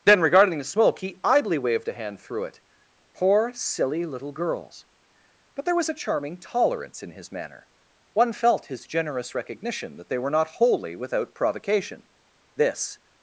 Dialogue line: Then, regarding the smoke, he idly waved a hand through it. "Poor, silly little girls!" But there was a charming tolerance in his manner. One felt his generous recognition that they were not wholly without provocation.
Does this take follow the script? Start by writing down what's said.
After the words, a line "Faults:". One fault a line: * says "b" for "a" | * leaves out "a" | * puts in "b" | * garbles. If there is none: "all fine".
Then, regarding the smoke, he idly waved a hand through it. "Poor, silly little girls!" But there was a charming tolerance in his manner. One felt his generous recognition that they were not wholly without provocation. This
Faults:
* puts in "This"